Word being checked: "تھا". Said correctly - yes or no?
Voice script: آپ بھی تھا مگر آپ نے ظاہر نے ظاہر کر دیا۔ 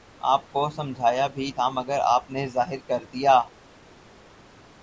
yes